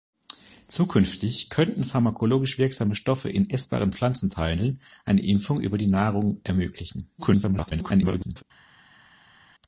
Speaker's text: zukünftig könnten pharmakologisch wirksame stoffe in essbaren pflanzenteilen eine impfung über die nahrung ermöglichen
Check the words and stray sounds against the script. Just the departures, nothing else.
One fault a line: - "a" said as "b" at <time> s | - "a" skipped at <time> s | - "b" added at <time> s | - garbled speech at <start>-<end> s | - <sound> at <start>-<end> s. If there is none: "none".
- garbled speech at 7.2-8.4 s